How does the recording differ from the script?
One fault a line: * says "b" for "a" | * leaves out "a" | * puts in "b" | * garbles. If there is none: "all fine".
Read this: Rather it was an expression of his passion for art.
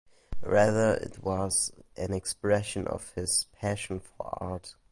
all fine